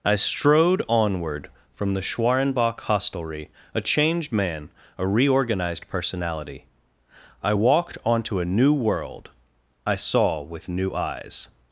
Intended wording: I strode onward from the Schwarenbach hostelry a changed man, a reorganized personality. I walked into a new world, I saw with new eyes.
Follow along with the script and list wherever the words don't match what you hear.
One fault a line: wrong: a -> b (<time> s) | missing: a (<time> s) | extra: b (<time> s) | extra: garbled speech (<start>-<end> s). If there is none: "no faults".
wrong: into -> onto (8.1 s)